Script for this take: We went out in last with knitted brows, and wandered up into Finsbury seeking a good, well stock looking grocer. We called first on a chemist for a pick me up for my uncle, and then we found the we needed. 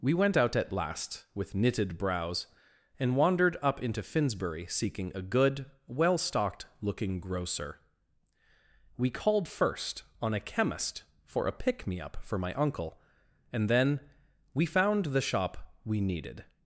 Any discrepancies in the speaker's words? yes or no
yes